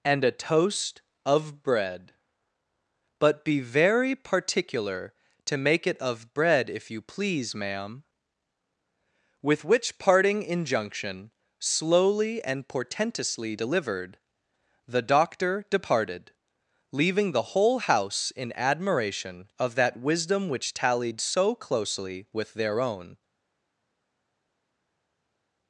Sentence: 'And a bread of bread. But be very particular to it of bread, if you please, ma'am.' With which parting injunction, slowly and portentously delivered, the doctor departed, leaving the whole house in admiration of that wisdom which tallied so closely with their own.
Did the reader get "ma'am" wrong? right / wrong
right